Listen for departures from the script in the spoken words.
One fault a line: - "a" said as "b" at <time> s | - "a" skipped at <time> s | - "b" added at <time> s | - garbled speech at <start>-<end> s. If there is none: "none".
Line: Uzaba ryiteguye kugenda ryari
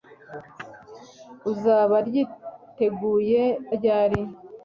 - "kugenda" skipped at 3.4 s